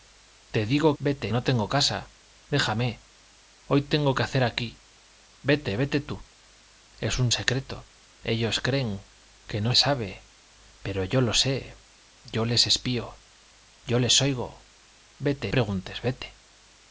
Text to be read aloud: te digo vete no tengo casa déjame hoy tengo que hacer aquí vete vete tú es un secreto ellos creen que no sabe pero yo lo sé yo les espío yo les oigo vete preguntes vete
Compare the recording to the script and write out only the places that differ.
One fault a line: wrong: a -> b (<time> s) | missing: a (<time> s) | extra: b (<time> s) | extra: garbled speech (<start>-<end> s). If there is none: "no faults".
no faults